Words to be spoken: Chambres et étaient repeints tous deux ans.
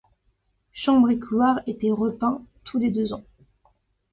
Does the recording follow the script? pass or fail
fail